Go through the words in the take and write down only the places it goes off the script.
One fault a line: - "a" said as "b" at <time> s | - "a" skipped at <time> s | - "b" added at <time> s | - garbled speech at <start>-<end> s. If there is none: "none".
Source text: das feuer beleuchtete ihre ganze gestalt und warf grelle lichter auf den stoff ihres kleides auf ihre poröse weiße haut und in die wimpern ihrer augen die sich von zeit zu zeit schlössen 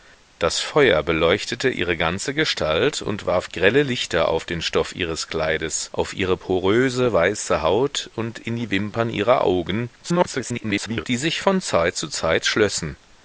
- garbled speech at 10.0-11.0 s